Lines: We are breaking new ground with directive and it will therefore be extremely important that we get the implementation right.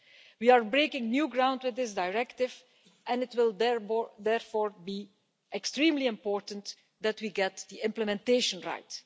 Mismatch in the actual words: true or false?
true